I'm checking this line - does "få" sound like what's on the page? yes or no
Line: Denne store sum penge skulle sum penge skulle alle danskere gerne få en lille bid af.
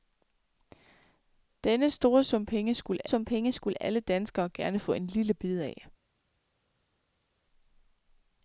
yes